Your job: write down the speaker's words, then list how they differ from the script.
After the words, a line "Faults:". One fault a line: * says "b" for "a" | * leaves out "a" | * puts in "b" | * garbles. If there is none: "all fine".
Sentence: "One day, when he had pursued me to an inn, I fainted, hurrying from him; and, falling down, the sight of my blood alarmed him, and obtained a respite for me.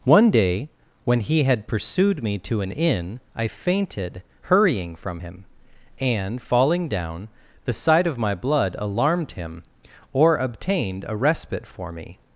"One day, when he had pursued me to an inn, I fainted, hurrying from him; and, falling down, the sight of my blood alarmed him, or obtained a respite for me.
Faults:
* says "or" for "and"